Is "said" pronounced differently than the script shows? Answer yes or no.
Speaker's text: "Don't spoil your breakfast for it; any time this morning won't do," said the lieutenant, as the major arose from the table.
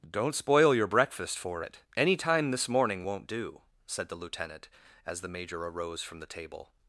no